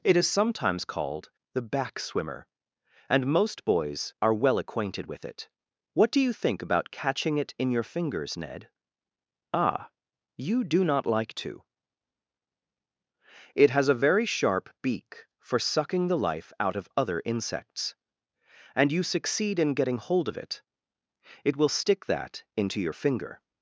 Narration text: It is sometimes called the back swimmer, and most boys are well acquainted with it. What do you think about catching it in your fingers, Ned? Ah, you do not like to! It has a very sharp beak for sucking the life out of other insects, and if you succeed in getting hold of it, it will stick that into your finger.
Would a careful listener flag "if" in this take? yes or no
yes